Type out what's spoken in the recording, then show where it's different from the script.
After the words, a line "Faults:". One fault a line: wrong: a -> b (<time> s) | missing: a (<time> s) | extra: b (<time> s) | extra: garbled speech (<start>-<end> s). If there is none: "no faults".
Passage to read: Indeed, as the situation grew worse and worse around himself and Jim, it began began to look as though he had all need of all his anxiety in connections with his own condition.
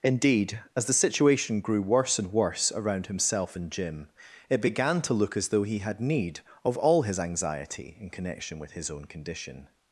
Indeed, as the situation grew worse and worse around himself and Jim, it began to look as though he had need of all his anxiety in connection with his own condition.
Faults:
missing: began (5.0 s)
missing: all (6.0 s)
wrong: connections -> connection (8.1 s)